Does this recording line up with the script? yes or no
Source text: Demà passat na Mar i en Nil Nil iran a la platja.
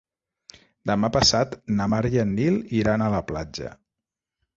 no